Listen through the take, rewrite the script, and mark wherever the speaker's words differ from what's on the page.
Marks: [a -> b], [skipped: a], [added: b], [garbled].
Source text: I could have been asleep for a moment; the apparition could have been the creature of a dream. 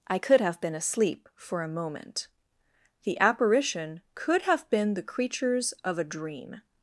I could have been asleep for a moment; the apparition could have been the [creature -> creatures] of a dream.